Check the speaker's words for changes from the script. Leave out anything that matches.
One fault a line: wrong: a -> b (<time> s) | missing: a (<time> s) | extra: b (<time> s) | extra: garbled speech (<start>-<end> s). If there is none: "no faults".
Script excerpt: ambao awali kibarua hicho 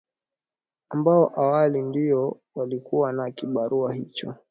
extra: ndio walikuwa na (1.8 s)